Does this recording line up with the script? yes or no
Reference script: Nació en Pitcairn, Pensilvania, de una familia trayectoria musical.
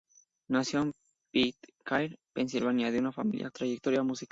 yes